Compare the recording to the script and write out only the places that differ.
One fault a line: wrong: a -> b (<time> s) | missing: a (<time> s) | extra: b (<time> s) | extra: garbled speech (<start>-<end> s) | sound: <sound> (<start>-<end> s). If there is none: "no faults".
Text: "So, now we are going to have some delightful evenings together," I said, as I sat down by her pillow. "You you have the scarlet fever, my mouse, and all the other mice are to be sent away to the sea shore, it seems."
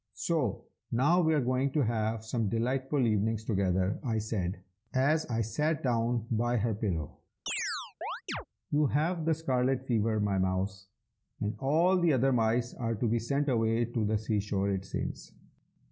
sound: chirp (7.5-8.5 s)
missing: you (8.9 s)